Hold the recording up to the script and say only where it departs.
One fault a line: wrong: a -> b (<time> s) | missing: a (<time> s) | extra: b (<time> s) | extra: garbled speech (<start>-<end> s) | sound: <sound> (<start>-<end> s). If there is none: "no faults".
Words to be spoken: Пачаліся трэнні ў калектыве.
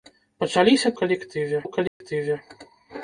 wrong: трэнні -> калектыве (1.0 s)
sound: dropout (1.9-2.0 s)